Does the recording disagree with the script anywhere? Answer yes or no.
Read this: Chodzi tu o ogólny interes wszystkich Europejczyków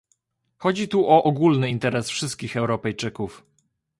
no